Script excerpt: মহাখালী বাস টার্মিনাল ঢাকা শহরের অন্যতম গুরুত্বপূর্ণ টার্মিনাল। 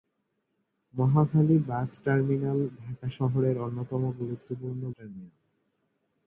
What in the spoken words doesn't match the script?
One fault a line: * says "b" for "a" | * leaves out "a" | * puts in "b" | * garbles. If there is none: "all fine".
all fine